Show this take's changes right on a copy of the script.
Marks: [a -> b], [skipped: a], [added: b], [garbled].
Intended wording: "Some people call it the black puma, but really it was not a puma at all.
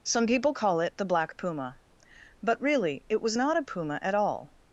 "Some people call it the black puma, but really it was not a puma at all.